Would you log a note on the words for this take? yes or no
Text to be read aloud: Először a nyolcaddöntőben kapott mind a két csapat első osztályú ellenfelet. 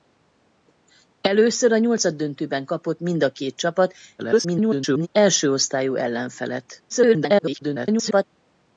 yes